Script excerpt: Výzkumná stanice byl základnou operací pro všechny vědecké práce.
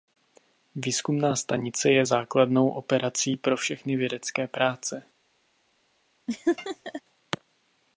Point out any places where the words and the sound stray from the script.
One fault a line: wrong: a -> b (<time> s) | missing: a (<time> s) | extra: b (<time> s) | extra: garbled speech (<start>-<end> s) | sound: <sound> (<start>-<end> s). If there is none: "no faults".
wrong: byl -> je (1.9 s)
sound: laugh (6.3-7.0 s)